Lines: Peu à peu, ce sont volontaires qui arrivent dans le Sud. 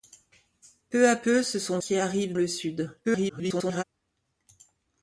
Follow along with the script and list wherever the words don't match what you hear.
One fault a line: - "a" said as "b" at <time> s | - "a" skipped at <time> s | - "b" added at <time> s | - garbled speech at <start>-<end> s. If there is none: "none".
- "volontaires" skipped at 1.8 s
- "dans" skipped at 2.3 s
- garbled speech at 3.0-3.8 s